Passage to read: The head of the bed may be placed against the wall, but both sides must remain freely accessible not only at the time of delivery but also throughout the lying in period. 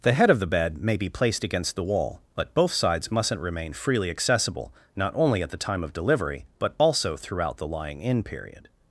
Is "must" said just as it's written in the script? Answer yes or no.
no